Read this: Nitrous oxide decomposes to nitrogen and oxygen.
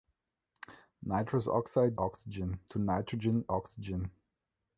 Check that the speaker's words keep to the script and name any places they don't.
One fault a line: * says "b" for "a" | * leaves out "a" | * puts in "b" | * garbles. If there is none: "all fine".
* says "oxygen" for "decomposes"
* leaves out "and"